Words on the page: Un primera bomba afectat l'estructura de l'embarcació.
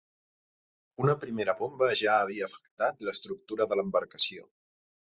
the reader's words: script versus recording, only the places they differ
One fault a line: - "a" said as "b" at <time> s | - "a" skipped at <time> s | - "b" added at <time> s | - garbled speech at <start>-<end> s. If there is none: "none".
- "Un" said as "Una" at 1.0 s
- "ja havia" added at 2.0 s